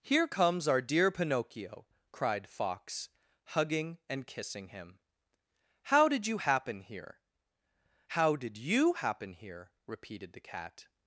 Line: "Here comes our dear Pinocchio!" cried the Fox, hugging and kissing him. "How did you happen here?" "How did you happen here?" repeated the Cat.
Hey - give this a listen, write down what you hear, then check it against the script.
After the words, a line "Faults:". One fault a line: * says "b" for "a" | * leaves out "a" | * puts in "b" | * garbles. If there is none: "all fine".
"Here comes our dear Pinocchio!" cried Fox, hugging and kissing him. "How did you happen here?" "How did you happen here?" repeated the Cat.
Faults:
* leaves out "the"